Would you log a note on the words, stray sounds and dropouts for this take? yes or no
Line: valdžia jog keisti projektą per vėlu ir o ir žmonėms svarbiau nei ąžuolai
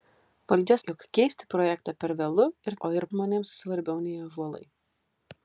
no